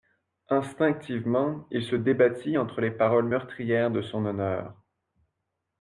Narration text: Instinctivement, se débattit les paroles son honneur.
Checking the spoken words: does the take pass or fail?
fail